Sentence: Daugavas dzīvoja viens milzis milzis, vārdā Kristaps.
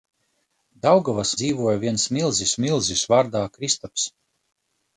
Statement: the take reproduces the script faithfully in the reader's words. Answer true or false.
true